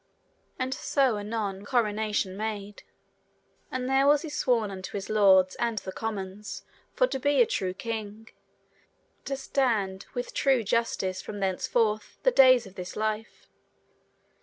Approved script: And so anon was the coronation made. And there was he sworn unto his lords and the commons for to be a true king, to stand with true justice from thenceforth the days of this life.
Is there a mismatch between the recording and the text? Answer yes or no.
yes